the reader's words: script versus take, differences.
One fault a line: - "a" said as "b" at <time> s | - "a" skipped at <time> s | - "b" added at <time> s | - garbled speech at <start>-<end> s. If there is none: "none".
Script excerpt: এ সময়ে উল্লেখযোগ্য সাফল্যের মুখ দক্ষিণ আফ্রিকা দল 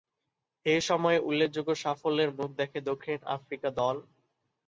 - "দেখে" added at 2.5 s